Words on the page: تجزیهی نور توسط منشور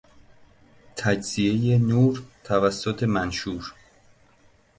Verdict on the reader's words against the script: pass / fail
pass